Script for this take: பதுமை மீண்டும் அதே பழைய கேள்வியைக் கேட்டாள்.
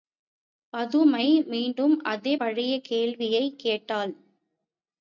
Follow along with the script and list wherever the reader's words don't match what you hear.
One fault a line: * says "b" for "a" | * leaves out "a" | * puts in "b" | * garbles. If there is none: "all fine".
all fine